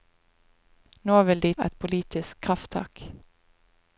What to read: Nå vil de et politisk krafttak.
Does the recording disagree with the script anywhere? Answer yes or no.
no